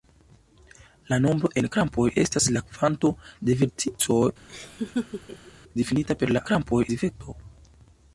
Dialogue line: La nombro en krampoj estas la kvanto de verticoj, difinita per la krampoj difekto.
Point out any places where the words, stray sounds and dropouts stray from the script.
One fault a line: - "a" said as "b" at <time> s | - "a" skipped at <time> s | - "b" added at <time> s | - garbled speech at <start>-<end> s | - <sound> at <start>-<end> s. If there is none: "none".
- laugh at 4.5-5.5 s